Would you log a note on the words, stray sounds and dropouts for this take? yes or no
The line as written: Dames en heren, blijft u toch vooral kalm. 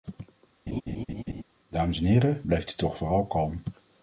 yes